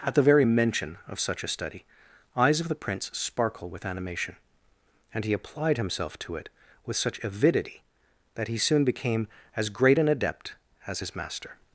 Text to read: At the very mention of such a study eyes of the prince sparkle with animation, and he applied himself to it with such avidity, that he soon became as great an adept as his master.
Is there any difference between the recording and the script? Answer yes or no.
no